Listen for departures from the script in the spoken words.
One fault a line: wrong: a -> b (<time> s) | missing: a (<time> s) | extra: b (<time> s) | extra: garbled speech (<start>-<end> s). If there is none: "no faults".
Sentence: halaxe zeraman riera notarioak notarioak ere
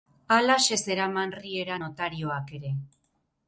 missing: notarioak (2.6 s)